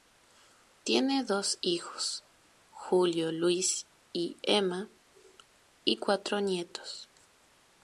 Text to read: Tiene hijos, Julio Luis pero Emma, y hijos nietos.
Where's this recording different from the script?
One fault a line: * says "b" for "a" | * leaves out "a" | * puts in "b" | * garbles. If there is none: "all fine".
* puts in "dos"
* says "y" for "pero"
* says "cuatro" for "hijos"